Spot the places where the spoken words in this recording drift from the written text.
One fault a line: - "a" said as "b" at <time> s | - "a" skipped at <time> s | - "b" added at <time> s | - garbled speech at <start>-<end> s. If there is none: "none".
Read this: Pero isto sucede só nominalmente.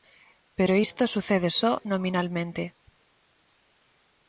none